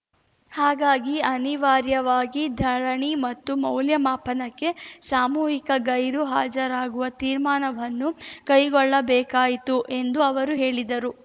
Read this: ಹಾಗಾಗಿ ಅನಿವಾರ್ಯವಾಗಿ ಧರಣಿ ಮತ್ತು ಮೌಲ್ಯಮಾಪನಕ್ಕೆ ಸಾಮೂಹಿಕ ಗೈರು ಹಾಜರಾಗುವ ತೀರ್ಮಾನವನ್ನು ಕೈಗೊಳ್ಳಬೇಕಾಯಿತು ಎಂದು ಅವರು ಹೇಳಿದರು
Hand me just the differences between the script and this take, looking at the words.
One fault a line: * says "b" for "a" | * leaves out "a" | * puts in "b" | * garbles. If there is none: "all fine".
all fine